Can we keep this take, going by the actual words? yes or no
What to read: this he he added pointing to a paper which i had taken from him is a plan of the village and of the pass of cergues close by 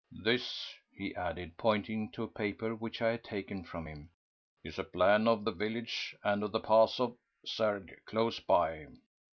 no